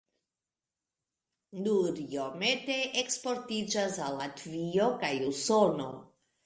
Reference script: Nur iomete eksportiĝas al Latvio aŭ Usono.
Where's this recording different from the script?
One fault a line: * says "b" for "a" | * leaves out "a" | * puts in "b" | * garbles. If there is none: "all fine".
* says "kaj" for "aŭ"